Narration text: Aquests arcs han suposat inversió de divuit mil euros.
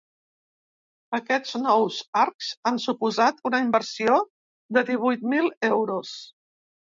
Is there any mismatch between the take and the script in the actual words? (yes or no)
yes